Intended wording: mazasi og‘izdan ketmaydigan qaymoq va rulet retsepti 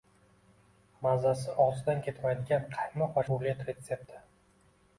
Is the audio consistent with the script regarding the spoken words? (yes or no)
yes